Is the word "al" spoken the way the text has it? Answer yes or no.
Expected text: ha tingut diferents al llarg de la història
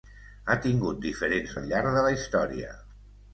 yes